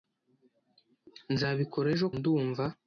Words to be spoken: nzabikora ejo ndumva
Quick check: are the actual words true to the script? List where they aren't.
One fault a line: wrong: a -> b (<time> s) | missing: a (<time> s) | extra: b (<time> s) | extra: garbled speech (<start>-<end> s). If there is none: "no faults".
no faults